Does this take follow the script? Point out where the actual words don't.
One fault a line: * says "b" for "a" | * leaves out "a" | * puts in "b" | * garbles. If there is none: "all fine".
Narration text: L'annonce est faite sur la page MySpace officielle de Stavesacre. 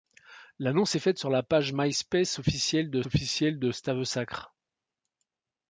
* puts in "officielle de"